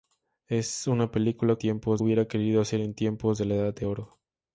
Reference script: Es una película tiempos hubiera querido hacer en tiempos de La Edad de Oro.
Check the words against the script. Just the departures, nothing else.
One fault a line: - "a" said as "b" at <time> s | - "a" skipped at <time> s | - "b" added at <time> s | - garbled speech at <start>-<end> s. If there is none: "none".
none